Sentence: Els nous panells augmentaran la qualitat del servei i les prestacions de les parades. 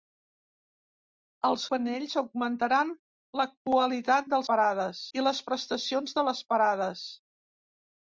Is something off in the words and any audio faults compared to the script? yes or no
yes